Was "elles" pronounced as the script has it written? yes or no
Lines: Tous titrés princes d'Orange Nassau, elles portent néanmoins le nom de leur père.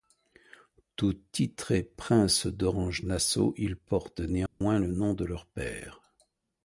no